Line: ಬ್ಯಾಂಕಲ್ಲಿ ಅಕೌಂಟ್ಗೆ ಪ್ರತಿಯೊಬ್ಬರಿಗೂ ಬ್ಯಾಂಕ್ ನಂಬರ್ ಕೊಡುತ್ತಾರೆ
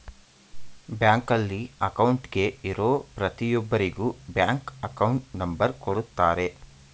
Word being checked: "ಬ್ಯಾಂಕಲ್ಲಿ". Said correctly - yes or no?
yes